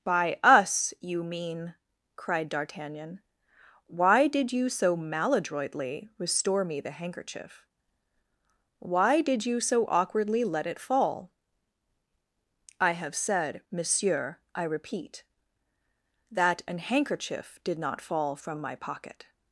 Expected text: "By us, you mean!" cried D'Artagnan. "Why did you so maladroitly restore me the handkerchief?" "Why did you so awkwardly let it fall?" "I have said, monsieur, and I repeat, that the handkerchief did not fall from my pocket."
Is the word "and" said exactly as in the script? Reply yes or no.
no